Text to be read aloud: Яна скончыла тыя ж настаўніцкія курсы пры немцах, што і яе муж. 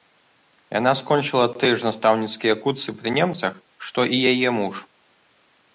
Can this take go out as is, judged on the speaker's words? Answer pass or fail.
pass